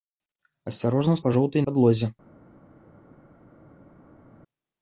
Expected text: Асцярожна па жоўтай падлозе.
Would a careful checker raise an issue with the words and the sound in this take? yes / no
no